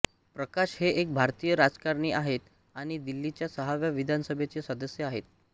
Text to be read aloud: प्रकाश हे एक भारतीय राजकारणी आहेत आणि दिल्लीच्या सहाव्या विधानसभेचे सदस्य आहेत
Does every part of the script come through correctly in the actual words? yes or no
yes